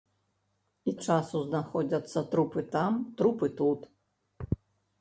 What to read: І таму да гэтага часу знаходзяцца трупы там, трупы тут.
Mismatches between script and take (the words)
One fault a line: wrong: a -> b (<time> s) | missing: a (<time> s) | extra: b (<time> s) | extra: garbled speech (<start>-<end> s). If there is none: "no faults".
missing: таму да гэтага (0.9 s)